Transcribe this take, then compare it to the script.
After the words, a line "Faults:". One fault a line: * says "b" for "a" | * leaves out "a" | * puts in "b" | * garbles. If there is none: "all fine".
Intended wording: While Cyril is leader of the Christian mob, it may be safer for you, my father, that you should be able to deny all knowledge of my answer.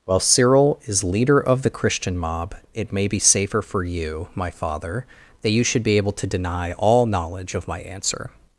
While Cyril is leader of the Christian mob, it may be safer for you, my father, that you should be able to deny all knowledge of my answer.
Faults:
all fine